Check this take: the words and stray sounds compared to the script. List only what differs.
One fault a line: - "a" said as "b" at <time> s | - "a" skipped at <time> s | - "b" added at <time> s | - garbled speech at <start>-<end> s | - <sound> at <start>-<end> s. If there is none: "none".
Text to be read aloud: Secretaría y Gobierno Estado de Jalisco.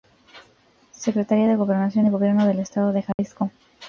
- "de Gobernación" added at 1.5 s
- "del" added at 2.4 s
- dropout at 3.1-3.2 s